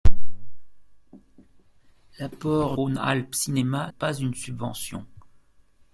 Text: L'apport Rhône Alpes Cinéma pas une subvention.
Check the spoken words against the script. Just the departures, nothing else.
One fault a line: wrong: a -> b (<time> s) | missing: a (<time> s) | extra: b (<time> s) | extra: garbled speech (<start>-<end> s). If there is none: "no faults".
no faults